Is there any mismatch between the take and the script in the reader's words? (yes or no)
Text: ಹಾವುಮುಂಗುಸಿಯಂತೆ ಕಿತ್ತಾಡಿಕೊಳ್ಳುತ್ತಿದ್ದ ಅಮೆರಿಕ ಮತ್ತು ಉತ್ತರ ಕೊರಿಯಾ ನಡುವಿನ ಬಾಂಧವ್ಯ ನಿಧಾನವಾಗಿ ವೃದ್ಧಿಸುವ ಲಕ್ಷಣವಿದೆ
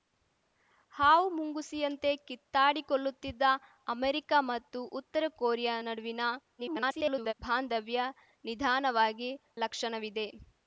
yes